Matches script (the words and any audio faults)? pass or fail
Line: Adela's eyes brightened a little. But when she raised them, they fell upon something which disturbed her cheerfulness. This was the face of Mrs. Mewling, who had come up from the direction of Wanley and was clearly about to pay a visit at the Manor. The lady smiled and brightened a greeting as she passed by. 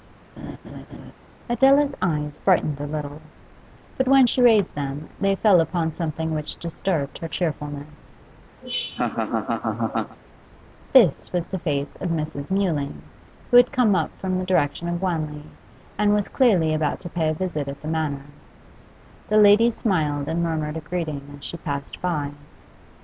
fail